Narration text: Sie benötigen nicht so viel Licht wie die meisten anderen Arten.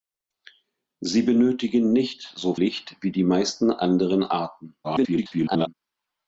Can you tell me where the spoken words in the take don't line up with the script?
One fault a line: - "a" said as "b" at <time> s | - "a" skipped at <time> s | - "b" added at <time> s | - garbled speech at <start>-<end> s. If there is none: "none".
- "viel" skipped at 2.5 s
- garbled speech at 4.8-5.7 s